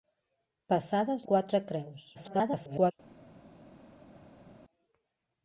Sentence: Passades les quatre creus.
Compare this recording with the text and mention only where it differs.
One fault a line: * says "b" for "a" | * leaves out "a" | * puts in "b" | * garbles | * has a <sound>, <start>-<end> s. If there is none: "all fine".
* leaves out "les"
* garbles